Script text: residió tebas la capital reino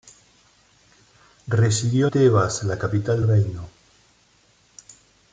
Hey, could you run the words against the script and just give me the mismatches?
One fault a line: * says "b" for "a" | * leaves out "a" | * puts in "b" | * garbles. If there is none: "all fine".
all fine